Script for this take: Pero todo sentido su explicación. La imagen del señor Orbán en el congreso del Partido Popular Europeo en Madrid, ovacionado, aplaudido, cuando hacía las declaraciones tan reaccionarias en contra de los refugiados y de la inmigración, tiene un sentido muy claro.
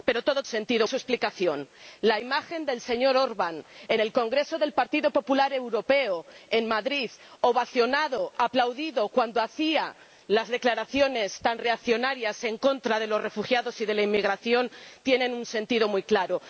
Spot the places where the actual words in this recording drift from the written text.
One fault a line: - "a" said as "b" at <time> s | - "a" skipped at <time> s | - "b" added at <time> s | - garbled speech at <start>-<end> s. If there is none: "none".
none